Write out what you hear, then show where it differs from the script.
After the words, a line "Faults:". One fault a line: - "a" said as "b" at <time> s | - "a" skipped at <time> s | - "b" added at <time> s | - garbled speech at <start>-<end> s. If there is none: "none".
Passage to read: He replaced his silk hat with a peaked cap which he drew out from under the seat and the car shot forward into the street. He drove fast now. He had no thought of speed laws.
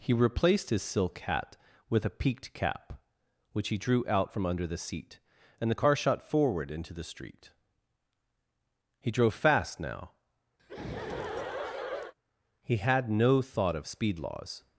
He replaced his silk hat with a peaked cap which he drew out from under the seat and the car shot forward into the street. He drove fast now. He had no thought of speed laws.
Faults:
none